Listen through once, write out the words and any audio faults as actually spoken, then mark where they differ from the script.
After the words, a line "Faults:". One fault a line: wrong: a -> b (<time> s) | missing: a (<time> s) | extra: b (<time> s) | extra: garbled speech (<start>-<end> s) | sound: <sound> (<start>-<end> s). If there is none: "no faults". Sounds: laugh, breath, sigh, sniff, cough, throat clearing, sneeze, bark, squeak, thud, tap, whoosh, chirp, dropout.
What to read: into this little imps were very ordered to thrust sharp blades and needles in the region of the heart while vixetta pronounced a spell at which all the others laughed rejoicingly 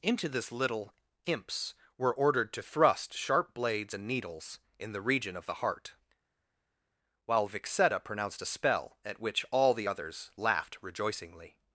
into this little imps were ordered to thrust sharp blades and needles in the region of the heart while vixetta pronounced a spell at which all the others laughed rejoicingly
Faults:
missing: very (2.1 s)